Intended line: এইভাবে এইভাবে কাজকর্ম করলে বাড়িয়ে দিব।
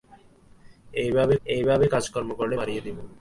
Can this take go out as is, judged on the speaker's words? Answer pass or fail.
pass